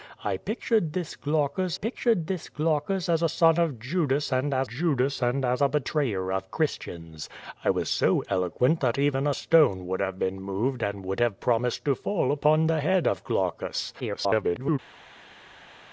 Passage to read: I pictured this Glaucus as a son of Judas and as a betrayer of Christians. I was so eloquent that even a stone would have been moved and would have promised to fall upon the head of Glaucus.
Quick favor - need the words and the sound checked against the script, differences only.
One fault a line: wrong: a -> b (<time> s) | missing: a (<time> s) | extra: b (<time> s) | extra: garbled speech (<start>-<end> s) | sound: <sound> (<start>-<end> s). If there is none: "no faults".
extra: pictured this Glaucus (1.7 s)
extra: Judas and as (4.7 s)
extra: garbled speech (14.0-14.8 s)